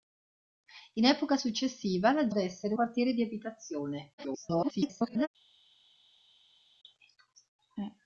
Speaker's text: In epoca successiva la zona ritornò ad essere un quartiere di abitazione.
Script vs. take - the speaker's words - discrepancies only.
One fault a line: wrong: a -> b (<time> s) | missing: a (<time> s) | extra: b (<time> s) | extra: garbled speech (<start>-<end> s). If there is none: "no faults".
missing: zona ritornò (2.3 s)
missing: un (2.7 s)
extra: garbled speech (4.2-5.3 s)